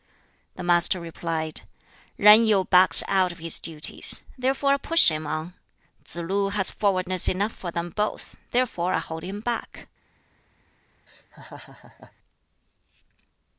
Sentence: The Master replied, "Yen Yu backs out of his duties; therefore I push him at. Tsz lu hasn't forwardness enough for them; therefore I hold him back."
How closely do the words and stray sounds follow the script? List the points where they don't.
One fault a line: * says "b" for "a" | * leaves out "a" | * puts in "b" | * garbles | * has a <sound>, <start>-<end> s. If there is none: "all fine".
* says "on" for "at"
* says "has" for "hasn't"
* puts in "both"
* has a laugh, 11.1-12.1 s